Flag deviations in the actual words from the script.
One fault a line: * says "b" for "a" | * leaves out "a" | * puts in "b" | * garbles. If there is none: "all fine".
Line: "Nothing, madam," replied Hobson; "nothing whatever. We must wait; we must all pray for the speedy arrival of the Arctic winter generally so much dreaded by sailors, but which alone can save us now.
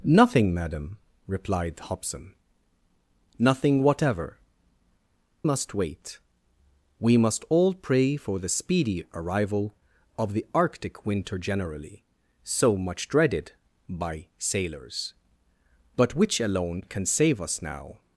* leaves out "We"